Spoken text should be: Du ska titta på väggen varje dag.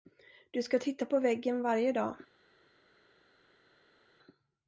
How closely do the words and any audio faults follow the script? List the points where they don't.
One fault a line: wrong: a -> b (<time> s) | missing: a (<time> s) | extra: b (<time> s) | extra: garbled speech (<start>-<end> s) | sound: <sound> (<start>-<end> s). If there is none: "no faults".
no faults